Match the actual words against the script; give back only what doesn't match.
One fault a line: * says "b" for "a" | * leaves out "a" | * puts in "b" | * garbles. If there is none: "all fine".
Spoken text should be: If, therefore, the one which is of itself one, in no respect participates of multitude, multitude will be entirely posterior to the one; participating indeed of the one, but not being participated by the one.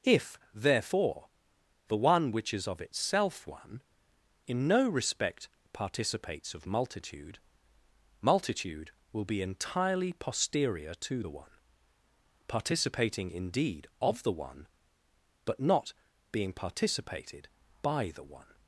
all fine